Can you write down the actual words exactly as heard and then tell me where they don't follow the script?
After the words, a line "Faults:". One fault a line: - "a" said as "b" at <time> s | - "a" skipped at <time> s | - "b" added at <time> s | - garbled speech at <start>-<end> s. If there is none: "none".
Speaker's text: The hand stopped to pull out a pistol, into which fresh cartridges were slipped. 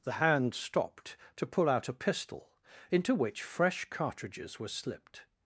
The hand stopped to pull out a pistol, into which fresh cartridges were slipped.
Faults:
none